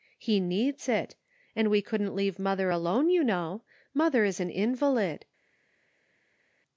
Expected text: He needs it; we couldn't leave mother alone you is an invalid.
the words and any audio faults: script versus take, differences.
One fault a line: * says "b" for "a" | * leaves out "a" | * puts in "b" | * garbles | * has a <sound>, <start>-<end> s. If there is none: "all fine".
* puts in "and"
* puts in "know Mother"